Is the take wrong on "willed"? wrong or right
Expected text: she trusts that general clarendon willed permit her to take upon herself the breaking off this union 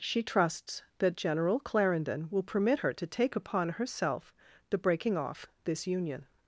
wrong